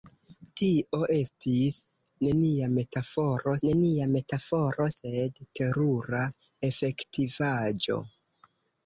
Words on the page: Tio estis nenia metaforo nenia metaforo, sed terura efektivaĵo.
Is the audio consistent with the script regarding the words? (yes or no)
yes